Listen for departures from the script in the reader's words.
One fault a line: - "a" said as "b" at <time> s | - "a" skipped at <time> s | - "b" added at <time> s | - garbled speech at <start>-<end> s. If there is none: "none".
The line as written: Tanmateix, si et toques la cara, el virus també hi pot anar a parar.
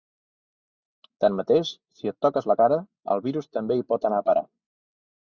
none